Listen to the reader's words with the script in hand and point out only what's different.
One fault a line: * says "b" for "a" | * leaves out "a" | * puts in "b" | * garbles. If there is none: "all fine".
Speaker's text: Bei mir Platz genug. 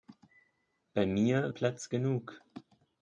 all fine